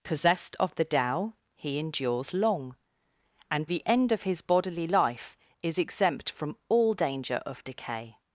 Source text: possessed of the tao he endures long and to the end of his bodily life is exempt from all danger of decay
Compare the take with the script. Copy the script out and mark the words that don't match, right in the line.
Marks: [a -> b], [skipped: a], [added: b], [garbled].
possessed of the tao he endures long and [skipped: to] the end of his bodily life is exempt from all danger of decay